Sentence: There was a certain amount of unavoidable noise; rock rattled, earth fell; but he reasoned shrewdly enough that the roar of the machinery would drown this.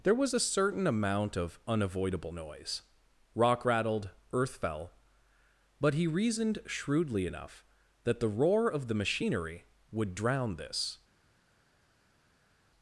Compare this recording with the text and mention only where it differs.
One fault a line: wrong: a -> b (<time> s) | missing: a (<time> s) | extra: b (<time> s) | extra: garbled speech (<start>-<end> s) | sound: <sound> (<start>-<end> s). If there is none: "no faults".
no faults